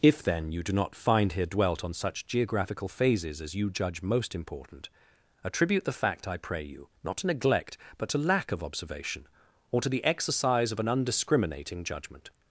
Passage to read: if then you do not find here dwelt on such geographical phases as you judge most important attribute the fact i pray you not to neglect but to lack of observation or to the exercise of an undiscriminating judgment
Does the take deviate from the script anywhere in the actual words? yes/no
no